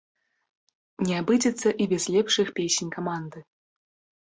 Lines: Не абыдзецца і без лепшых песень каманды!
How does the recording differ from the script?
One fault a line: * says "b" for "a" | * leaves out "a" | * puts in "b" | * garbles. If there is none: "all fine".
all fine